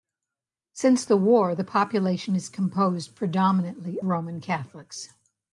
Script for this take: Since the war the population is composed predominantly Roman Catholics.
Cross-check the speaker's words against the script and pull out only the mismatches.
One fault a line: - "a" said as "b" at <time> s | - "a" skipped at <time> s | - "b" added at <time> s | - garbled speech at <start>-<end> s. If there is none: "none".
none